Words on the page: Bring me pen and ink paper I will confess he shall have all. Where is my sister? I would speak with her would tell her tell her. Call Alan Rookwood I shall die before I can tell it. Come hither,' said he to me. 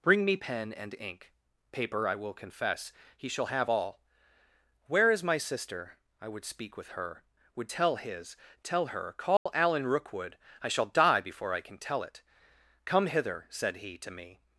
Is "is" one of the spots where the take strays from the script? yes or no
no